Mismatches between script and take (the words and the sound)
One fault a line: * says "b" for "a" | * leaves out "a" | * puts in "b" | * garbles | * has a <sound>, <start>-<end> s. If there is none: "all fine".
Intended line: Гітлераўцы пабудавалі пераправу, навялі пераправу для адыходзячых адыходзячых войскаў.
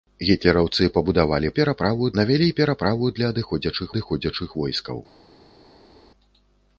all fine